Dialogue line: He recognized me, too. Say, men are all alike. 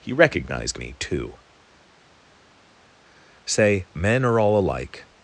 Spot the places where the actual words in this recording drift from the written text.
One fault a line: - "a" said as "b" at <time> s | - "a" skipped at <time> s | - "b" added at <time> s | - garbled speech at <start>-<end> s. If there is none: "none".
none